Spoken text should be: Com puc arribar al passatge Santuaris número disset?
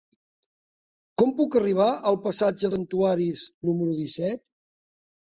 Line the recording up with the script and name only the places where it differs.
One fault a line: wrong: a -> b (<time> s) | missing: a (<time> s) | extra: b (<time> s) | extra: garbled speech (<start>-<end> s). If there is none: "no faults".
no faults